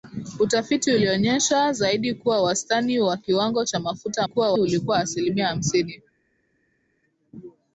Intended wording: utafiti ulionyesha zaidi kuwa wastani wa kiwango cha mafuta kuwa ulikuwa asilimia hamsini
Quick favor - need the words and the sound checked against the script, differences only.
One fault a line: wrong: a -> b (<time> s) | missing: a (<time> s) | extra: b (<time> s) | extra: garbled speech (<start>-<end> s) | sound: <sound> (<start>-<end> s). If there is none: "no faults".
no faults